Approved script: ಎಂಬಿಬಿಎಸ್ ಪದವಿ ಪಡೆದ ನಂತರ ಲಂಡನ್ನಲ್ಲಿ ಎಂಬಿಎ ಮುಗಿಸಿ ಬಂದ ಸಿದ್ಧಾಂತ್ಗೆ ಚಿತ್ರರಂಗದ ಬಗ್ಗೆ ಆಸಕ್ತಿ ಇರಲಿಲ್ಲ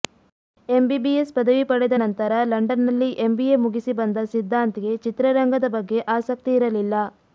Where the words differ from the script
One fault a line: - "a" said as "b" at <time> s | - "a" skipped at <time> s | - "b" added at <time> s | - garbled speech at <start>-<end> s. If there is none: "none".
none